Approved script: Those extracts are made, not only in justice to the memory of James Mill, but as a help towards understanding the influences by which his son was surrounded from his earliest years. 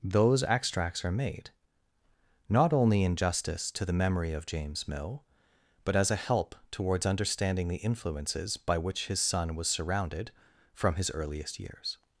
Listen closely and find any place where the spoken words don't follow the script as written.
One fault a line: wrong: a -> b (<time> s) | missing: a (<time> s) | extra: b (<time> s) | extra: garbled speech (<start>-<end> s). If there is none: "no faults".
no faults